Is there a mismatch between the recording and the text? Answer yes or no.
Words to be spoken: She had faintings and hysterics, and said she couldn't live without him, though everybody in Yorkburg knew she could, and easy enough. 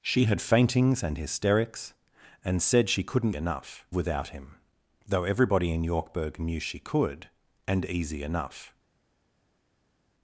yes